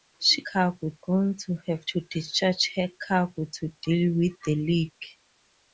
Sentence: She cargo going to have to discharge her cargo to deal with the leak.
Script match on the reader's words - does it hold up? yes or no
yes